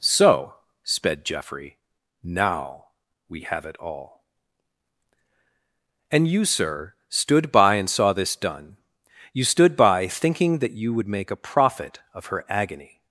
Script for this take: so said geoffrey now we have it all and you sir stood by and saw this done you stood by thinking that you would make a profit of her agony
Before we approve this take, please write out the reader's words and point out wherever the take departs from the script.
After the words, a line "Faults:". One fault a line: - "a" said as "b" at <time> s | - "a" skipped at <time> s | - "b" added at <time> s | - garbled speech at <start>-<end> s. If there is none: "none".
so sped geoffrey now we have it all and you sir stood by and saw this done you stood by thinking that you would make a profit of her agony
Faults:
- "said" said as "sped" at 0.8 s